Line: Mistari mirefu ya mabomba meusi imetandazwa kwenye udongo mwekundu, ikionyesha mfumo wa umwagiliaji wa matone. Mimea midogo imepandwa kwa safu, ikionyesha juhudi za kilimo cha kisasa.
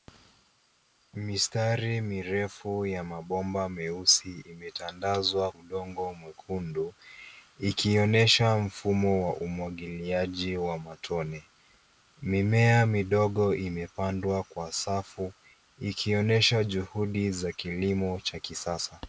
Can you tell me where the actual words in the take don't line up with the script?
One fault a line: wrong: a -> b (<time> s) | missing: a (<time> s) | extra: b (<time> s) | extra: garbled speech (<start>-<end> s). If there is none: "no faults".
missing: kwenye (5.5 s)